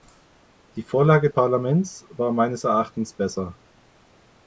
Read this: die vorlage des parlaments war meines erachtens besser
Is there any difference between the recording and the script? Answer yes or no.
yes